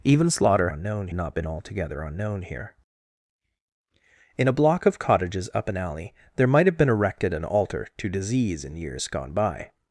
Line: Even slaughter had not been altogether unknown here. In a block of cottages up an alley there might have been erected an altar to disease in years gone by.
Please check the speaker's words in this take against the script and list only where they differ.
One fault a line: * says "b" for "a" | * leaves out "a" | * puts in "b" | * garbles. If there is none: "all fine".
* says "unknown" for "had"